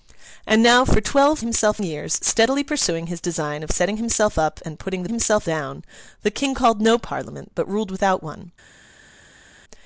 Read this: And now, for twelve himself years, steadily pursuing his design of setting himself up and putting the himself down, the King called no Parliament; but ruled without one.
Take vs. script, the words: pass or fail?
pass